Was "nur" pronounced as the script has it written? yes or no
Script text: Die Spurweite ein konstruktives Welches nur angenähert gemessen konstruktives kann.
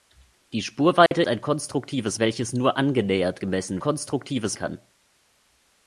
yes